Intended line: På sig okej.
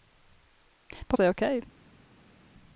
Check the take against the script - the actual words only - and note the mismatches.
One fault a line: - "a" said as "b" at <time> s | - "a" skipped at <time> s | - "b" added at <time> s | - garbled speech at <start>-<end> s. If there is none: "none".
none